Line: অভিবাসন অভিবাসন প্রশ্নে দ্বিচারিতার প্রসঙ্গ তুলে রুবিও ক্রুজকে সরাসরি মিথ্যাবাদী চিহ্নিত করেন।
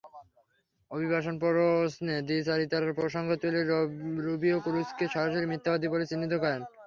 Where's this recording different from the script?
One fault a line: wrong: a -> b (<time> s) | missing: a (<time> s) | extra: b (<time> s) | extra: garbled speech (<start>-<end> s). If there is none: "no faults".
missing: অভিবাসন (1.4 s)
extra: বলে (5.9 s)